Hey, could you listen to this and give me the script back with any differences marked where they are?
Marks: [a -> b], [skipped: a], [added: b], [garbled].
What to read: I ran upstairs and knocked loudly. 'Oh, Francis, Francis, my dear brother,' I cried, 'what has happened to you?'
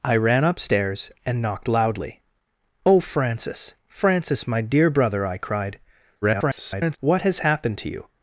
I ran upstairs and knocked loudly. 'Oh, Francis, Francis, my dear brother,' I cried, [garbled] 'what has happened to you?'